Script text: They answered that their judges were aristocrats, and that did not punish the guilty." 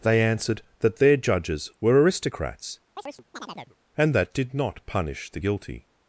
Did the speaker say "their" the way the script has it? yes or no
yes